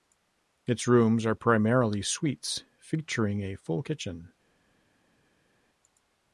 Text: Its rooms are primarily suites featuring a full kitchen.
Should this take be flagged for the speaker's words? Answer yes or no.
no